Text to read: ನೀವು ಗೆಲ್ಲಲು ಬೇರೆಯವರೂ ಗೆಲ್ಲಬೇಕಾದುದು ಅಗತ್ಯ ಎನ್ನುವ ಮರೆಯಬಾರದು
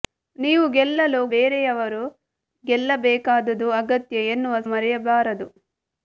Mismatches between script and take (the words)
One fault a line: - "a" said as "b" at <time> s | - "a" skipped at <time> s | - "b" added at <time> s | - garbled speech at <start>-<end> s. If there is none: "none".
none